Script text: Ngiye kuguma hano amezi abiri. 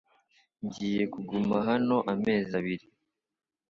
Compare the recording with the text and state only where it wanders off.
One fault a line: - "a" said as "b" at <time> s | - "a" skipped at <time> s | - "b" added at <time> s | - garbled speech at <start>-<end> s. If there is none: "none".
none